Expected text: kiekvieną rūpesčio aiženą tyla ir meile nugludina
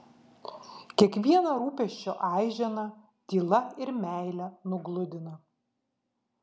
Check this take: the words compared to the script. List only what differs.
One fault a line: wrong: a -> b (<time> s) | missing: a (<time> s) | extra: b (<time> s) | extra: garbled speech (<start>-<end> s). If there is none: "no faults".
no faults